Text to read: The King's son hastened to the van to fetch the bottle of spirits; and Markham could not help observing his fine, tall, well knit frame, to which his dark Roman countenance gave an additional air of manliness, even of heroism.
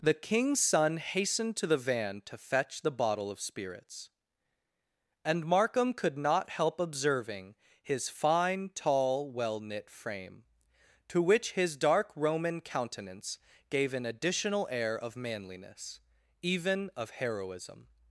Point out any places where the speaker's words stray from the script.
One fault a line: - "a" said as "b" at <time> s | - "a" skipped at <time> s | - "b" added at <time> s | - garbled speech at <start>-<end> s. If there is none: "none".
none